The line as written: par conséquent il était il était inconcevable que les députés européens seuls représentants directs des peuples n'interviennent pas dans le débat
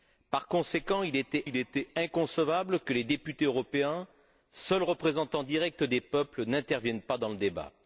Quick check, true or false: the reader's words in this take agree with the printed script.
true